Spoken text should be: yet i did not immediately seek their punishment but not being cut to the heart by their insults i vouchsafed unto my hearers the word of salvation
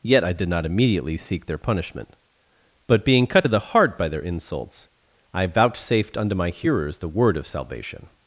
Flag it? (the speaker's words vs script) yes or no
yes